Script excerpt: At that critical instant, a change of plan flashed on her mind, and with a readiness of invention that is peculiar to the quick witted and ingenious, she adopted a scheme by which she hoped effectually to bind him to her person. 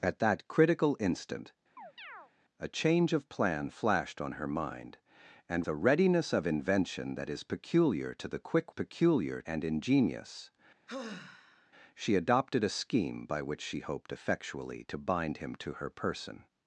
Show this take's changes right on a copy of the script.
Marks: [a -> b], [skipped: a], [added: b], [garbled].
At that critical instant, a change of plan flashed on her mind, and [skipped: with] a readiness of invention that is peculiar to the quick [witted -> peculiar] and ingenious, she adopted a scheme by which she hoped effectually to bind him to her person.